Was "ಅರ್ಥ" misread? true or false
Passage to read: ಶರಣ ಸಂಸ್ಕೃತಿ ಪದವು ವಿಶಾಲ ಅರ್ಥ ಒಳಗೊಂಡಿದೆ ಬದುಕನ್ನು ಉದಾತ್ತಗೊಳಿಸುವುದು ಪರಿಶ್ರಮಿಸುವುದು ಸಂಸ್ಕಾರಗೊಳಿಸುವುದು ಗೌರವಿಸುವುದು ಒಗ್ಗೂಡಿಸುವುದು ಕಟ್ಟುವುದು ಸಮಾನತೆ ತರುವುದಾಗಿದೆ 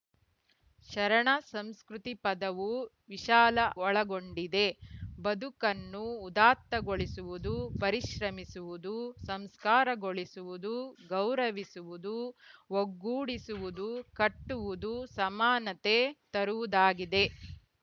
true